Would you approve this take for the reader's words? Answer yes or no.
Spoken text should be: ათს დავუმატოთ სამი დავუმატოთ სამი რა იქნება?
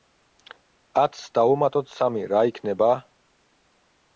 no